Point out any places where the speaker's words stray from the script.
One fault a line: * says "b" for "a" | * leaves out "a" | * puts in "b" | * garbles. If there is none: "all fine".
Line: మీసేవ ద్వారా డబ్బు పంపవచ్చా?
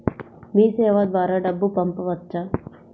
all fine